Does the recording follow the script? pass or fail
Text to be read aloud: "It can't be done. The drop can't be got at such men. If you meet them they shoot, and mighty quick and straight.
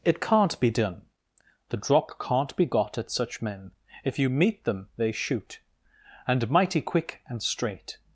pass